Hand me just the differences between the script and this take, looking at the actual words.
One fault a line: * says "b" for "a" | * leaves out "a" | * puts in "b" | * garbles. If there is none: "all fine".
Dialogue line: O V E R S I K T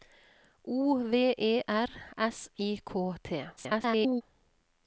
* garbles